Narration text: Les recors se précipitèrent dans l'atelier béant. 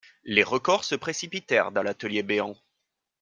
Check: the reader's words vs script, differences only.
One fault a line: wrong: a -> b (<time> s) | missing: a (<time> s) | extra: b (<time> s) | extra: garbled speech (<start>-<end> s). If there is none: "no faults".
no faults